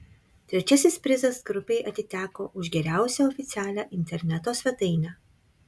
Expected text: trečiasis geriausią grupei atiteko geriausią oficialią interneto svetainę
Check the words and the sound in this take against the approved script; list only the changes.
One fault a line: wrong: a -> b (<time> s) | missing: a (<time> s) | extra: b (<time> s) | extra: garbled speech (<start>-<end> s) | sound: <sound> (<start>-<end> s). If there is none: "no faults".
wrong: geriausią -> prizas (1.1 s)
extra: už (2.6 s)